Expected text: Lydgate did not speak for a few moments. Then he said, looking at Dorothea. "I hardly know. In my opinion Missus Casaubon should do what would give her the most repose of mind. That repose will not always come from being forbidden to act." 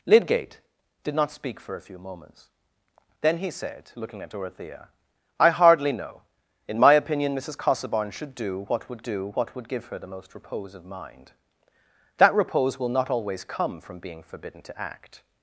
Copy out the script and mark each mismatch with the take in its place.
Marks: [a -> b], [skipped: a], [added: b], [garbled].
Lydgate did not speak for a few moments. Then he said, looking at Dorothea. "I hardly know. In my opinion Missus Casaubon should do what would [added: do what would] give her the most repose of mind. That repose will not always come from being forbidden to act."